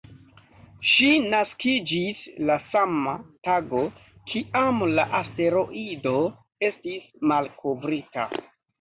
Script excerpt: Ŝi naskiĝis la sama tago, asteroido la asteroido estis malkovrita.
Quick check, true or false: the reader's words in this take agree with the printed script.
false